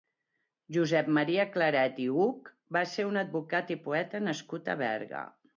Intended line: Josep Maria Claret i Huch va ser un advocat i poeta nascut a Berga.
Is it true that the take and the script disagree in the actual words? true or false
false